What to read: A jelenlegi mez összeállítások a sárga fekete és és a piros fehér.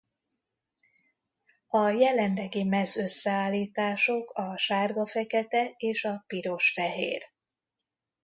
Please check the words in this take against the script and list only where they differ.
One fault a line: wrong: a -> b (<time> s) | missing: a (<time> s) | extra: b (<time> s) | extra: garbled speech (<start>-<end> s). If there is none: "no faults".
missing: és (6.0 s)